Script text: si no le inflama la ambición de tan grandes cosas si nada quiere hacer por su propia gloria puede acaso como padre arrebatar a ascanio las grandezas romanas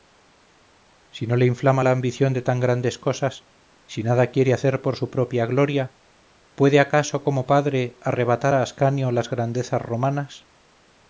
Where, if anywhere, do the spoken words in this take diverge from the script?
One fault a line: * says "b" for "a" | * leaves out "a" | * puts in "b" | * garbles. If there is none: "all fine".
all fine